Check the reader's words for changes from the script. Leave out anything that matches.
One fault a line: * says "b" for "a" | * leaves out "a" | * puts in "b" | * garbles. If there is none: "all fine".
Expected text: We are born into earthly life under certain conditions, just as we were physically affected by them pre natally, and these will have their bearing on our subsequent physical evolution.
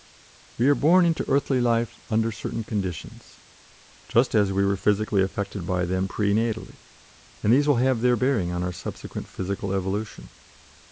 all fine